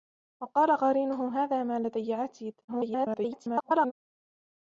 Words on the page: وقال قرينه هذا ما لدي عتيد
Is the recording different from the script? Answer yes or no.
yes